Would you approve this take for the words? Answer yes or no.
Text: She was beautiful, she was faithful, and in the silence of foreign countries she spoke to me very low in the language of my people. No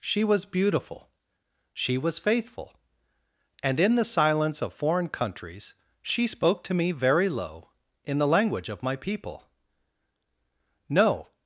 yes